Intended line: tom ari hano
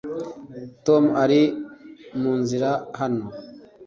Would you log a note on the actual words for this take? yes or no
yes